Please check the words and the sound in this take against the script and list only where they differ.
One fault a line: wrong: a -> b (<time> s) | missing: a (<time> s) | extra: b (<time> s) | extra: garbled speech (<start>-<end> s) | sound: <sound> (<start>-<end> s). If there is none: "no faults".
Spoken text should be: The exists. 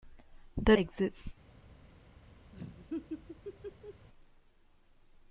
sound: laugh (2.5-4.1 s)